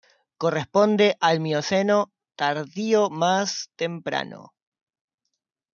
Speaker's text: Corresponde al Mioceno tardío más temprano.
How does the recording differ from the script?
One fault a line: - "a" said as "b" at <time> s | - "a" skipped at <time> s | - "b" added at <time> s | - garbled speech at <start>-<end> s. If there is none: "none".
none